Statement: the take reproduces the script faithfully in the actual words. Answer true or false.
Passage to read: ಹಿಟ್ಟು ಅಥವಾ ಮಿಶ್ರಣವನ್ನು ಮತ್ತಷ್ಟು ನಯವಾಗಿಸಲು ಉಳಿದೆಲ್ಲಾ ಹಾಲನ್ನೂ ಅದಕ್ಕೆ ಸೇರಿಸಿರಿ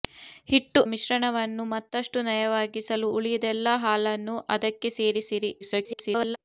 false